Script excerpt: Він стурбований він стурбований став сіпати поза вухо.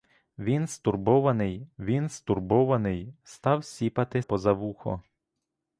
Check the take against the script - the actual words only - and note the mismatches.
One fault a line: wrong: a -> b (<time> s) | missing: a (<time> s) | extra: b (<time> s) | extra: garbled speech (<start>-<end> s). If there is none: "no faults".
no faults